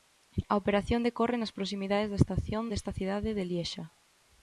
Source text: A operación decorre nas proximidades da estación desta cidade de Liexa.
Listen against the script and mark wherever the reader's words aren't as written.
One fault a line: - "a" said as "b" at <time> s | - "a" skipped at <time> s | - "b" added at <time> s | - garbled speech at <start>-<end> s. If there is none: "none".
none